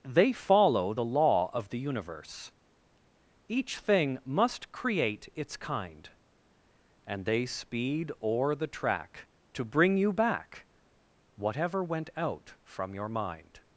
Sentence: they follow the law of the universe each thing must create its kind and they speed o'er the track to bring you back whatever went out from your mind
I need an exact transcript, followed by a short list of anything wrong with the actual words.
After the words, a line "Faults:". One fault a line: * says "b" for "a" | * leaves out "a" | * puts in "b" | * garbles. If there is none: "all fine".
they follow the law of the universe each thing must create its kind and they speed o'er the track to bring you back whatever went out from your mind
Faults:
all fine